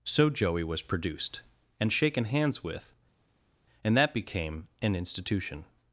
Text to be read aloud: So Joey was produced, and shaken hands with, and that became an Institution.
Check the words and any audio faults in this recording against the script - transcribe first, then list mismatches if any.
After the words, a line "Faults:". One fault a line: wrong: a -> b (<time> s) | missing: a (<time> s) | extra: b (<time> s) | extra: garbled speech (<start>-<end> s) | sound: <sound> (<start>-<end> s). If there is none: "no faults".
So Joey was produced, and shaken hands with, and that became an Institution.
Faults:
no faults